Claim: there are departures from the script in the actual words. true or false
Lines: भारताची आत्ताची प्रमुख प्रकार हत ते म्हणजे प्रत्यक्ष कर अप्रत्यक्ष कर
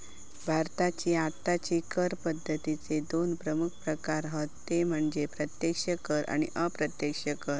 true